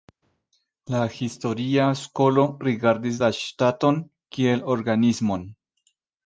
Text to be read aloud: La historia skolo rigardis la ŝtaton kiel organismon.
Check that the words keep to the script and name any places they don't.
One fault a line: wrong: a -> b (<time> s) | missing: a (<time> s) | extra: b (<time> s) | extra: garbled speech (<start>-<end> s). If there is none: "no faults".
no faults